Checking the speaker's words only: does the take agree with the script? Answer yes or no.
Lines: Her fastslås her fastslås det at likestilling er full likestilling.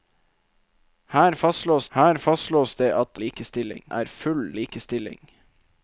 yes